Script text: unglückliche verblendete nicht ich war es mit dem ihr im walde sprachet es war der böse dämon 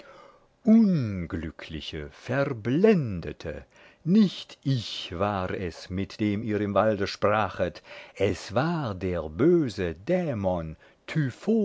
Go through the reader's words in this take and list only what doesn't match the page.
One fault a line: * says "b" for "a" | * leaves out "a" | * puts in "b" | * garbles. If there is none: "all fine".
all fine